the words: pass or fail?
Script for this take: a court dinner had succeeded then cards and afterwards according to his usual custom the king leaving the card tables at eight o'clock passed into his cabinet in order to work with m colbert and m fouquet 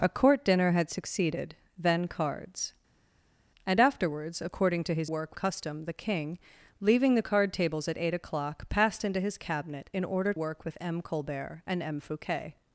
fail